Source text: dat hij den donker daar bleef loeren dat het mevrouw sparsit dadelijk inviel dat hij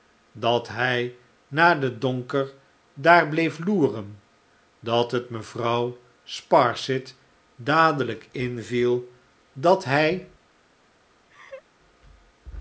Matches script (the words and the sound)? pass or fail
fail